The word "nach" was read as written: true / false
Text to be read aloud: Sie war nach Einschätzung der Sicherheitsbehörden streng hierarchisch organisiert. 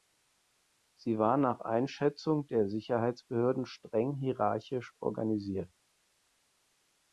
true